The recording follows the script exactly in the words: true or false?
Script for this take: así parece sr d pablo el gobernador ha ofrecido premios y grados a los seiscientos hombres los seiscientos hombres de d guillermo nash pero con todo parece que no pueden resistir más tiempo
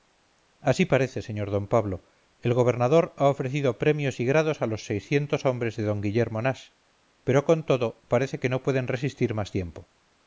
false